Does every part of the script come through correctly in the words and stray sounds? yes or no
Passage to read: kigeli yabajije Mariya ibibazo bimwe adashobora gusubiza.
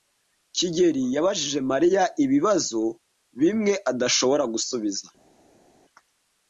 yes